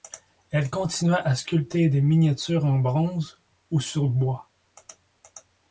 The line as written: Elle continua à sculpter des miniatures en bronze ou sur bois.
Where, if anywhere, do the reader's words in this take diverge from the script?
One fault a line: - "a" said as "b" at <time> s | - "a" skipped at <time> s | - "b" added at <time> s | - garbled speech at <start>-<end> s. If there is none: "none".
none